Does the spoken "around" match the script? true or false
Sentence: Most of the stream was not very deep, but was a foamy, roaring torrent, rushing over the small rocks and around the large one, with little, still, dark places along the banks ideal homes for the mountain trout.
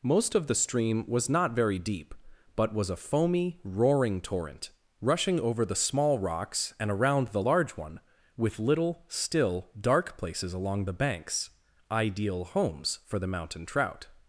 true